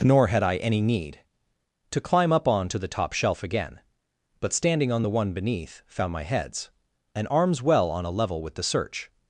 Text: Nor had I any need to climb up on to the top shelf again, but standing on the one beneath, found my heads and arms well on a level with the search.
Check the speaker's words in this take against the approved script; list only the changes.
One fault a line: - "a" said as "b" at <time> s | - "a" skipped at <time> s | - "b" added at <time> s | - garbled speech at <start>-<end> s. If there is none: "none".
none